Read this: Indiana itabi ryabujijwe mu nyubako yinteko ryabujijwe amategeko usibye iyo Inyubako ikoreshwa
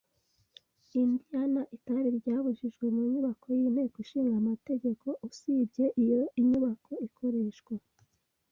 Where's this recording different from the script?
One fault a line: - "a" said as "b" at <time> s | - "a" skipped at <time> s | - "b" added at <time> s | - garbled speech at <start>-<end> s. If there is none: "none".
- "ryabujijwe" said as "ishinga" at 4.0 s